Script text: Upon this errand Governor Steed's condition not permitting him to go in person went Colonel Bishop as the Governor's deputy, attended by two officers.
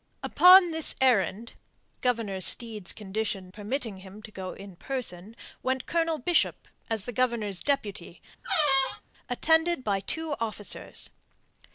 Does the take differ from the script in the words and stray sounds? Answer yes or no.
yes